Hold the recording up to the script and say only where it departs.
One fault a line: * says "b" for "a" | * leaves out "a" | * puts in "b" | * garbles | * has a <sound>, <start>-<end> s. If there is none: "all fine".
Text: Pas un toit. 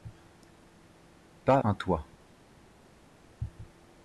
all fine